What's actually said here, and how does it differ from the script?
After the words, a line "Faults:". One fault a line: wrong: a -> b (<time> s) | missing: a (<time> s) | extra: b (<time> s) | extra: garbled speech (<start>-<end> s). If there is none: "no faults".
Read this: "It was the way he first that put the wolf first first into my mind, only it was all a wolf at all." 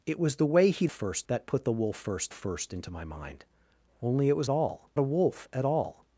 "It was the way he first that put the wolf first first into my mind, only it was all a wolf at all."
Faults:
no faults